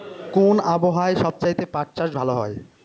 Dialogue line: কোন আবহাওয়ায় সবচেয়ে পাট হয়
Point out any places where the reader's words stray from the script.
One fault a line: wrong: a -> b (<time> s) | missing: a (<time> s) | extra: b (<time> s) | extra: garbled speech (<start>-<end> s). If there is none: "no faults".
extra: চাষ ভালো (2.0 s)